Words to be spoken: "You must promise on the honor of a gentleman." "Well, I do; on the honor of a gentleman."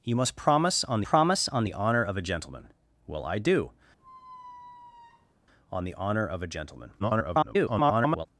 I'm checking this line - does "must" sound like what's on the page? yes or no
yes